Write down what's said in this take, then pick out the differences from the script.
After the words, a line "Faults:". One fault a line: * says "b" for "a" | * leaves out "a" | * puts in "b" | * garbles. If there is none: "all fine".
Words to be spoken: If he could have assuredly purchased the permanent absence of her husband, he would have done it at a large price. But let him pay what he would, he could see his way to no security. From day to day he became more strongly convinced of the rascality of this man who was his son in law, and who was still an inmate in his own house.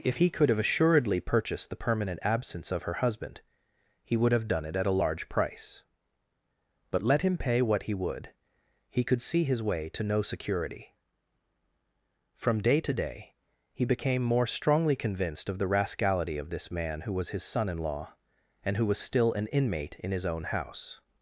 If he could have assuredly purchased the permanent absence of her husband, he would have done it at a large price. But let him pay what he would, he could see his way to no security. From day to day he became more strongly convinced of the rascality of this man who was his son in law, and who was still an inmate in his own house.
Faults:
all fine